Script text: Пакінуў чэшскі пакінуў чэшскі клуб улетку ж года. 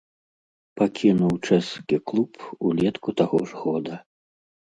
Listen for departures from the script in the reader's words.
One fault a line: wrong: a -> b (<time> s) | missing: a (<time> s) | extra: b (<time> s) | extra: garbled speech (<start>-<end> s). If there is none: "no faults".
missing: пакінуў чэшскі (2.0 s)
extra: таго (3.2 s)